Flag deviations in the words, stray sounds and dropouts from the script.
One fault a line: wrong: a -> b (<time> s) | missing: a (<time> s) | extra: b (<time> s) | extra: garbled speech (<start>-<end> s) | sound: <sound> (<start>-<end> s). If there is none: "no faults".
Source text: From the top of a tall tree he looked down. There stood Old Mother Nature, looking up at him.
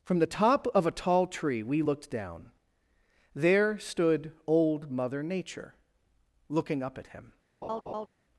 wrong: he -> we (1.6 s)
sound: laugh (7.6-8.1 s)